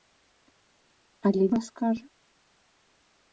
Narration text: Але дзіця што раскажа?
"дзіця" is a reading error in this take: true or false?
true